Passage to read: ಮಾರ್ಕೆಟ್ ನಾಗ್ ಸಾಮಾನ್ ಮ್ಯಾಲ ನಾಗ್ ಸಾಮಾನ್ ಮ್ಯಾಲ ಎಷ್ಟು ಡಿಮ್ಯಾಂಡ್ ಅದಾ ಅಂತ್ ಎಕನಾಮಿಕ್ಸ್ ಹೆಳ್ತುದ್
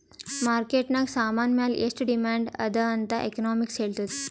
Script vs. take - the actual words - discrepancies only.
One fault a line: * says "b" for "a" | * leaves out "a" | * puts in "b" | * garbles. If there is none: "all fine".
* leaves out "ನಾಗ್ ಸಾಮಾನ್ ಮ್ಯಾಲ"